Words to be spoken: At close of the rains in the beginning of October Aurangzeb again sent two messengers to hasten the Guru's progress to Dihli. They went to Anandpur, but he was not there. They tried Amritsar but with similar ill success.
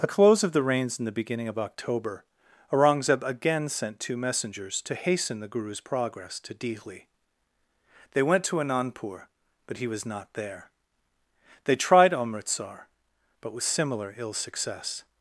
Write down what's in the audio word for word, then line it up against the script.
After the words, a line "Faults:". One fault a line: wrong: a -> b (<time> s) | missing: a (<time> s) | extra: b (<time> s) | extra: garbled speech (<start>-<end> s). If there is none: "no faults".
At close of the rains in the beginning of October Aurangzeb again sent two messengers to hasten the Guru's progress to Dihli. They went to Anandpur, but he was not there. They tried Amritsar but with similar ill success.
Faults:
no faults